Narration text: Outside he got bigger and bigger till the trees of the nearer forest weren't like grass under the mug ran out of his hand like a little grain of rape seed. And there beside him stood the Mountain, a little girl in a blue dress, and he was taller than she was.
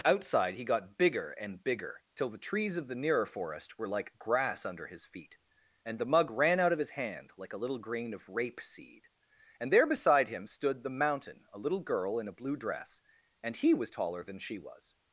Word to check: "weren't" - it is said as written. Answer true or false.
false